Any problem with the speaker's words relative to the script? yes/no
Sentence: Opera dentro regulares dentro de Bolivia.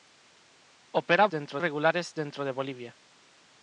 no